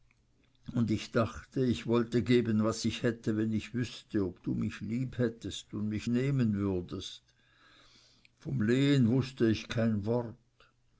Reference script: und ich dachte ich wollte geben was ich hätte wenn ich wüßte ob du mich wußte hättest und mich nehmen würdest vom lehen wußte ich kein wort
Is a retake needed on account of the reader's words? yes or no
yes